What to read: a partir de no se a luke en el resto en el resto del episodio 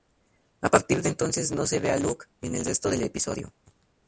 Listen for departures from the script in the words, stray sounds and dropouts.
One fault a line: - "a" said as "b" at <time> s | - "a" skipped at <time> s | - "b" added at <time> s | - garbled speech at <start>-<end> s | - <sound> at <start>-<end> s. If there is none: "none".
- "entonces" added at 1.1 s
- "ve" added at 1.8 s
- "en el resto" skipped at 2.9 s